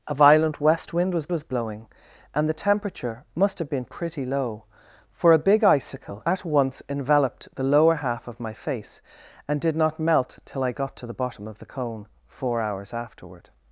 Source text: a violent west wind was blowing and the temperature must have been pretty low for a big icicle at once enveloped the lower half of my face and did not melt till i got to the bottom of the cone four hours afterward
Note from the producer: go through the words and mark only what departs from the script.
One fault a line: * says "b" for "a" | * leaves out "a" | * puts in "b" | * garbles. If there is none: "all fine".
* puts in "was"